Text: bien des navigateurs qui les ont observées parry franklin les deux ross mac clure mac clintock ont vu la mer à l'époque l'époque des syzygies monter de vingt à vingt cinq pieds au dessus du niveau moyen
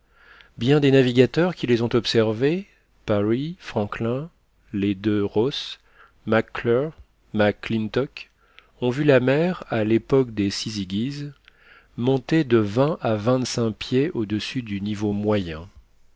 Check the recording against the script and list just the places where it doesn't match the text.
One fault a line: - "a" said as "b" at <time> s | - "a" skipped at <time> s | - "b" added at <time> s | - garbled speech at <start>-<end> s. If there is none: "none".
- "l'époque" skipped at 10.3 s